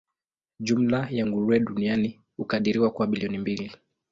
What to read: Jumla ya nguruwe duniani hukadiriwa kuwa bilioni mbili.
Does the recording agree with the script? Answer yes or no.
yes